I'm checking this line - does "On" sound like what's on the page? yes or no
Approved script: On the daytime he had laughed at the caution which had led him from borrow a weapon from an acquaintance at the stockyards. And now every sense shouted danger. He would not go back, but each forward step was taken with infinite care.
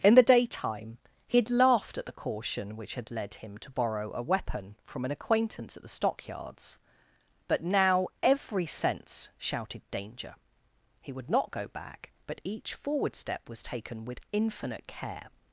no